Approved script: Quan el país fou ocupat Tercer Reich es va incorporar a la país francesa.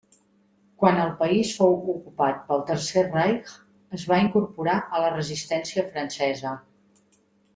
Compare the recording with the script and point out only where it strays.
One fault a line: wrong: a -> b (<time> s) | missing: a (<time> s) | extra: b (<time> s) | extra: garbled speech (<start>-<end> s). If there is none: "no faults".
extra: pel (2.5 s)
wrong: país -> resistència (5.1 s)